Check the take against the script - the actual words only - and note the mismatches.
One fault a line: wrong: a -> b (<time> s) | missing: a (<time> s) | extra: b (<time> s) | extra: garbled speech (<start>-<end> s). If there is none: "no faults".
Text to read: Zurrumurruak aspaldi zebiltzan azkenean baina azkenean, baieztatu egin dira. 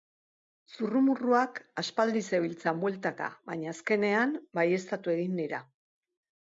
wrong: azkenean -> bueltaka (2.9 s)